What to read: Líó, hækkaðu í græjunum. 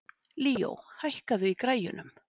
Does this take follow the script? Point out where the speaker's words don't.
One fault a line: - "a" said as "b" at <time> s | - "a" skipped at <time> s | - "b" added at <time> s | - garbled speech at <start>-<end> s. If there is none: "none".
none